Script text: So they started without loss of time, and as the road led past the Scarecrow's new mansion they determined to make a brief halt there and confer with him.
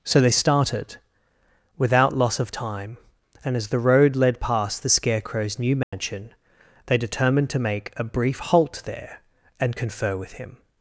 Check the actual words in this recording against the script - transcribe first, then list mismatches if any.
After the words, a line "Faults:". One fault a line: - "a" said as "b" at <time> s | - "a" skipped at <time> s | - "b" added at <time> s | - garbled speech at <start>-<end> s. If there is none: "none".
So they started without loss of time, and as the road led past the Scarecrow's new mansion they determined to make a brief halt there and confer with him.
Faults:
none